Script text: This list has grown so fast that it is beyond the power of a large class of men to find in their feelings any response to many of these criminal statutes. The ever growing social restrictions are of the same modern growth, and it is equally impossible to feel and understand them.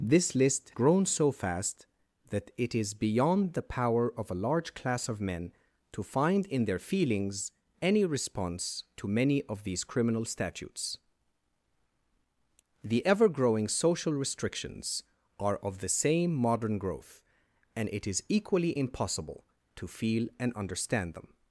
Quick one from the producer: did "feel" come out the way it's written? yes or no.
yes